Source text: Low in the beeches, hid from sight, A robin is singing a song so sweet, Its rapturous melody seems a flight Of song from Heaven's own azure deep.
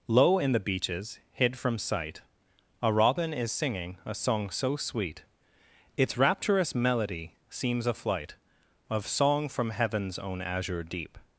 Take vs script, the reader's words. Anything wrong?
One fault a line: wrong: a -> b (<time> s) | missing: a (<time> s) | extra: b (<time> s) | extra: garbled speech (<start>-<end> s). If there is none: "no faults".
no faults